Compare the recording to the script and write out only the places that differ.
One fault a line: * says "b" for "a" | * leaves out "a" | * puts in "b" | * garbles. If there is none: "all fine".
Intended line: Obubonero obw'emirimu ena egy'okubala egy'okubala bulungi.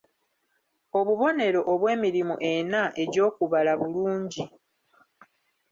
* leaves out "egy'okubala"